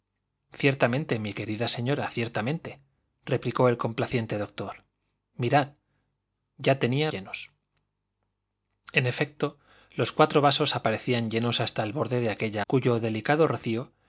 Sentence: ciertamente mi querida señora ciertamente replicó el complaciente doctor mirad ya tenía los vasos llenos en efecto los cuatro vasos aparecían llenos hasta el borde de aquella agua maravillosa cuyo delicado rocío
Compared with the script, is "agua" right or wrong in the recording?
wrong